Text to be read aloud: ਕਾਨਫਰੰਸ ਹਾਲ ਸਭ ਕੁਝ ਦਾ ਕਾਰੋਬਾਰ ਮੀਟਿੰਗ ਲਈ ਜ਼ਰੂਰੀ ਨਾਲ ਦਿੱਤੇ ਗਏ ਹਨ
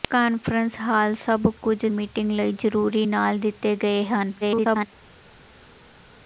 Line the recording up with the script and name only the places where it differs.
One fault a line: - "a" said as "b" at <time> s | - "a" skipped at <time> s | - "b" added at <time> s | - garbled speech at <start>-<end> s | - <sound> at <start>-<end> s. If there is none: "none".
- "ਦਾ ਕਾਰੋਬਾਰ" skipped at 1.9 s
- garbled speech at 4.4-4.9 s